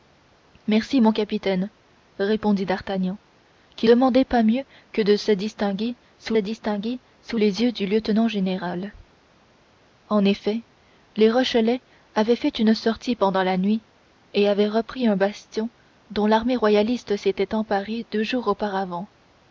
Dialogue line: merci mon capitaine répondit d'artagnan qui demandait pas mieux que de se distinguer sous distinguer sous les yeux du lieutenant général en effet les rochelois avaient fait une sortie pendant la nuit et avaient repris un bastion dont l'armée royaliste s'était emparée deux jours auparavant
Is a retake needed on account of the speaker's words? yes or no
no